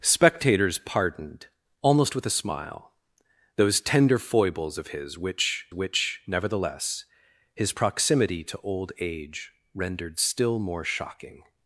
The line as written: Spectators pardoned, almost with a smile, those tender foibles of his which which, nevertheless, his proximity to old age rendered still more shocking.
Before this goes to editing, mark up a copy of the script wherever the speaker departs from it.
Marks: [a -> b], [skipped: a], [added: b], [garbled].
Spectators pardoned, almost with a smile, those tender foibles of his which which, nevertheless, his proximity to old age rendered still more shocking.